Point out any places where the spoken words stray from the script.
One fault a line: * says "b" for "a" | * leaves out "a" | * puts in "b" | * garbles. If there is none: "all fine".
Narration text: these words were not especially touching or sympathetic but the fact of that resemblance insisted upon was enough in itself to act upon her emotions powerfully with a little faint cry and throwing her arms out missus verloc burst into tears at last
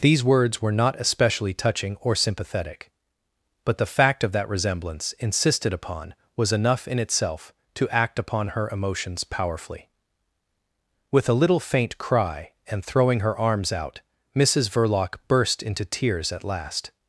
all fine